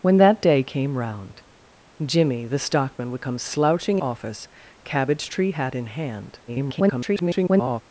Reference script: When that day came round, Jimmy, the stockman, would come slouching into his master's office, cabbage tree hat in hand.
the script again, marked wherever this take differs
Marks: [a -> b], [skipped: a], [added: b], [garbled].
When that day came round, Jimmy, the stockman, would come slouching [skipped: into his master's] office, cabbage tree hat in hand. [garbled]